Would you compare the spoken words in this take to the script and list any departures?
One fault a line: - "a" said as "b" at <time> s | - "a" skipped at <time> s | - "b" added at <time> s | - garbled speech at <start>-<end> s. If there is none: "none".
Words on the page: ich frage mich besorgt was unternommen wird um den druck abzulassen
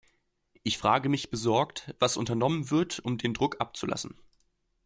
none